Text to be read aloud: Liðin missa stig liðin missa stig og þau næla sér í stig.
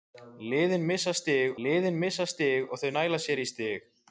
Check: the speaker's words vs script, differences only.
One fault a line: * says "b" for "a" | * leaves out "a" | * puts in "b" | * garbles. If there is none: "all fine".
all fine